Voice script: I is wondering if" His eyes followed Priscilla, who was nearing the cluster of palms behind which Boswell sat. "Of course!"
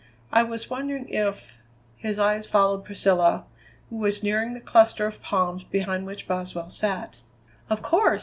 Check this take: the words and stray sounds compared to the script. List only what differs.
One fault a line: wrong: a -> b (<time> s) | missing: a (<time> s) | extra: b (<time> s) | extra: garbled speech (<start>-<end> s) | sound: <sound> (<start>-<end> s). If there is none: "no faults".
wrong: is -> was (0.4 s)